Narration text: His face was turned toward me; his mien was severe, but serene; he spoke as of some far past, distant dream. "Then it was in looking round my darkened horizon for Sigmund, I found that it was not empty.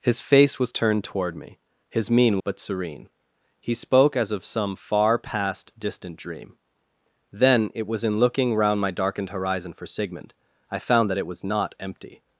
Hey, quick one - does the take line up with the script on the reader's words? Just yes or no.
no